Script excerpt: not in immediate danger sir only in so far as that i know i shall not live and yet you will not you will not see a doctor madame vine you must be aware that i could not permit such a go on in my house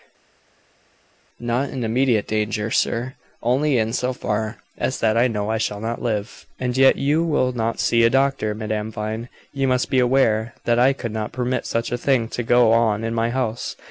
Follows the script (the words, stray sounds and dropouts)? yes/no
no